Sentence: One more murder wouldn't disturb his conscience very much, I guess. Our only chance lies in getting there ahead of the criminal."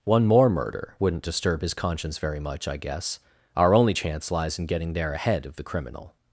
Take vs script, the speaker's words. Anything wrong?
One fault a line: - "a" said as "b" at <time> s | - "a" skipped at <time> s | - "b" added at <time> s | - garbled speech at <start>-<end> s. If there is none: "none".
none